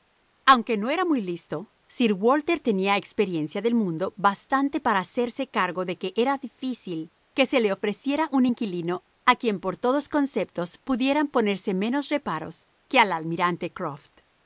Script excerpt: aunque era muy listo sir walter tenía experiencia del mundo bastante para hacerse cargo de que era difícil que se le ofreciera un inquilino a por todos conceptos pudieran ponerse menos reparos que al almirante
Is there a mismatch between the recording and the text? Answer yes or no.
yes